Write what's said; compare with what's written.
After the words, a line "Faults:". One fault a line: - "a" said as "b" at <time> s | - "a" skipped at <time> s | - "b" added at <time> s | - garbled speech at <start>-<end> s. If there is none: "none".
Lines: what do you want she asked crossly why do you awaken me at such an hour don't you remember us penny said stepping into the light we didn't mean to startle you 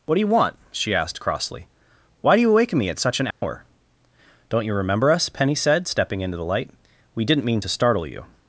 what do you want she asked crossly why do you awaken me at such an hour don't you remember us penny said stepping into the light we didn't mean to startle you
Faults:
none